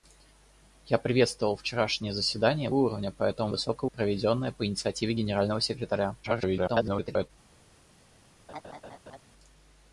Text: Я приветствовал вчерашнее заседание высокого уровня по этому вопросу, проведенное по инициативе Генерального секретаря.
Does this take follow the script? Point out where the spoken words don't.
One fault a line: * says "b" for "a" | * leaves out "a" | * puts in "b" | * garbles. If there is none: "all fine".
* leaves out "высокого"
* says "высокого" for "вопросу"
* garbles